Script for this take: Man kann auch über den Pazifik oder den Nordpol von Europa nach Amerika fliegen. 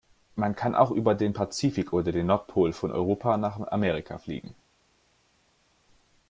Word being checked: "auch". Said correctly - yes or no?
yes